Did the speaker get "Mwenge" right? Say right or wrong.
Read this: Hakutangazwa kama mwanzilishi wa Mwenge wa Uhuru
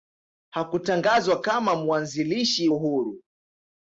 wrong